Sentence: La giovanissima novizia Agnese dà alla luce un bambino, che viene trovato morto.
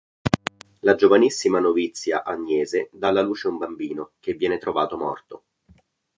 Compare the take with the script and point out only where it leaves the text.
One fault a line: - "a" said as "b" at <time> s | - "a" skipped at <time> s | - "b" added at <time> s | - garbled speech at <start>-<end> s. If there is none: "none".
none